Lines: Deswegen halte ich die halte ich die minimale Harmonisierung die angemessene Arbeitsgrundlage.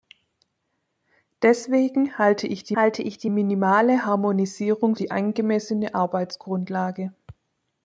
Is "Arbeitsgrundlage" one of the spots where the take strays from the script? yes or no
no